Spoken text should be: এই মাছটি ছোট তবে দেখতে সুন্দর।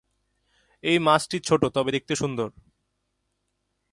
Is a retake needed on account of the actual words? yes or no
no